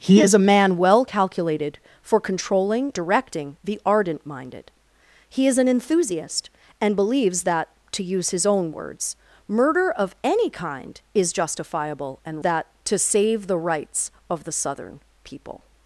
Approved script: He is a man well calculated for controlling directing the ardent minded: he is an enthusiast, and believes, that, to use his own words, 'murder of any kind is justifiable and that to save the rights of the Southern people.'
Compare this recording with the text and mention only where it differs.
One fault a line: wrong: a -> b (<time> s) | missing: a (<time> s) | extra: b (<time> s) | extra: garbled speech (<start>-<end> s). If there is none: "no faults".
no faults